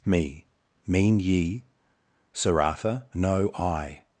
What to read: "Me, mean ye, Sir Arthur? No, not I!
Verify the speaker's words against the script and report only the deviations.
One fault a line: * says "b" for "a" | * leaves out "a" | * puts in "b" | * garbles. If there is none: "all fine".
* leaves out "not"